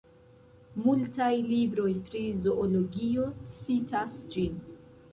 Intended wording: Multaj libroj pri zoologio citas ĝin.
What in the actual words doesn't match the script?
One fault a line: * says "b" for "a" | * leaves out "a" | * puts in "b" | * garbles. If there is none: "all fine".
all fine